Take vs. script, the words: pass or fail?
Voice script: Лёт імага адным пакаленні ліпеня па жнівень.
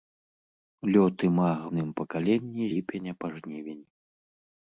pass